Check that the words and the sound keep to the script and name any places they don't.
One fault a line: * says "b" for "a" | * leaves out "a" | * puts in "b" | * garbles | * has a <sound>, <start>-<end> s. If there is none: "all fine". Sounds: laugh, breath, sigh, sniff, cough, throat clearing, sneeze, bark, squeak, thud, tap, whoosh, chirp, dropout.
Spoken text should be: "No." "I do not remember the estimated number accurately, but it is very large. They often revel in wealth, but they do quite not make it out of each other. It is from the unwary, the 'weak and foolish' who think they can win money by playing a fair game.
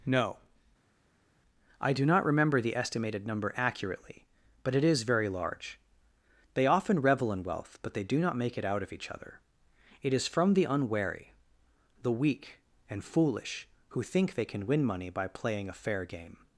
* leaves out "quite"